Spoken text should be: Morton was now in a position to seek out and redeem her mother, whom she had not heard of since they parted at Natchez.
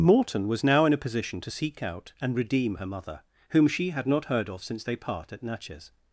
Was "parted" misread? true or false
true